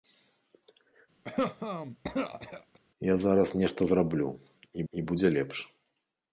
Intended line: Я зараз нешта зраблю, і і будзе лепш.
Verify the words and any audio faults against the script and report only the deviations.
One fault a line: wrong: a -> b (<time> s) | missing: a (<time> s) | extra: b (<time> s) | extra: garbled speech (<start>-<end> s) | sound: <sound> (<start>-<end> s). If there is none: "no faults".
sound: cough (1.2-2.8 s)